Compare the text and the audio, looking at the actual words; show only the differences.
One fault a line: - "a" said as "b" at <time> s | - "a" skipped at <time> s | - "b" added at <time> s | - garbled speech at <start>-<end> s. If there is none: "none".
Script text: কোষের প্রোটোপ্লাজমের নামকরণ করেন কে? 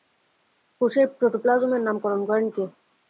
none